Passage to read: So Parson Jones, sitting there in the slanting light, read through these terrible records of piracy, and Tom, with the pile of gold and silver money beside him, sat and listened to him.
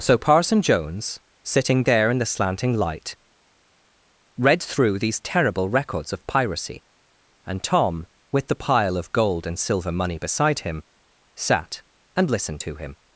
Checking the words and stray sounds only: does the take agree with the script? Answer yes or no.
yes